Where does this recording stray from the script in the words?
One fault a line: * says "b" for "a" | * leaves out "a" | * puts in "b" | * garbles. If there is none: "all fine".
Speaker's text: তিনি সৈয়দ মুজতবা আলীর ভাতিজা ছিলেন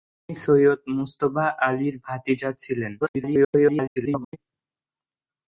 * garbles